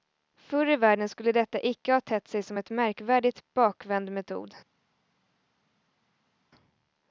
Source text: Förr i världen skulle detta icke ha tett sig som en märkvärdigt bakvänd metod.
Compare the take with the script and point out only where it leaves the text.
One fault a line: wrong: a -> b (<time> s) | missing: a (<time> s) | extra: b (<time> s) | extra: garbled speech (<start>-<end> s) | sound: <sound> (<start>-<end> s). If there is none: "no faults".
no faults